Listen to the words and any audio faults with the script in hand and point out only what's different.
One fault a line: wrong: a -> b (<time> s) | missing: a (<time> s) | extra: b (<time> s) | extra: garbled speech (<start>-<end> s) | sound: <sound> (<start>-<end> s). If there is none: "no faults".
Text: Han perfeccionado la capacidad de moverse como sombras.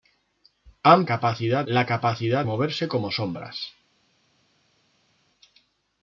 wrong: perfeccionado -> capacidad (1.0 s)
missing: de (2.4 s)